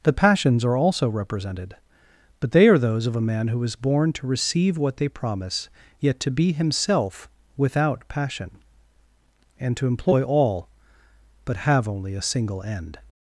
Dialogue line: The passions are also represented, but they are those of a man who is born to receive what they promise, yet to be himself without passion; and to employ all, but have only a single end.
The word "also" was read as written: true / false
true